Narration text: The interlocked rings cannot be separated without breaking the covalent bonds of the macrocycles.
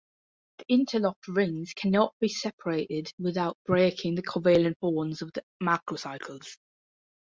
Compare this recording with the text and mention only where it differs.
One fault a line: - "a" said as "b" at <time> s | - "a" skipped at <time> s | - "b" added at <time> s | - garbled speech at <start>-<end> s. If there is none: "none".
none